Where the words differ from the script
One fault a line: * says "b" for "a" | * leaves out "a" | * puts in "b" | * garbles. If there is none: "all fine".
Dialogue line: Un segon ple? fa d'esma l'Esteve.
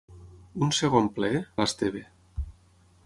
* leaves out "fa d'esma"